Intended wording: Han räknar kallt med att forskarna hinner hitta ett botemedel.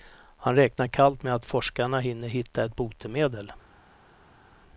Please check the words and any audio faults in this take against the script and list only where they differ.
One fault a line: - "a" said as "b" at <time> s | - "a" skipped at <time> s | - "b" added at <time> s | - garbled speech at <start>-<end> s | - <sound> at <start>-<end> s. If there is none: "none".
none